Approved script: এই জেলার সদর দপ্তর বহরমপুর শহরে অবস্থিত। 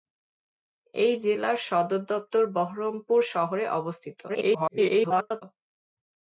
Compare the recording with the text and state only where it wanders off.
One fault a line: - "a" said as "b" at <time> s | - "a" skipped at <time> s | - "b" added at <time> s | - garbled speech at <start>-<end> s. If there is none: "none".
- garbled speech at 4.3-5.4 s